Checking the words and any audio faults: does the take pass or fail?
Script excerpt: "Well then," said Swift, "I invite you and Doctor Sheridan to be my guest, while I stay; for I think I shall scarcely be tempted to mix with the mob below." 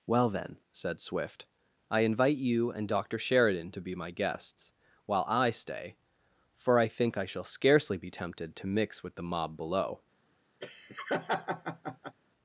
fail